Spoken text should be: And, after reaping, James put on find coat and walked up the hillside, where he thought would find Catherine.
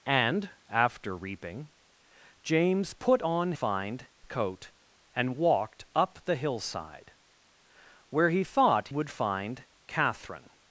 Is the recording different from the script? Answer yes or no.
no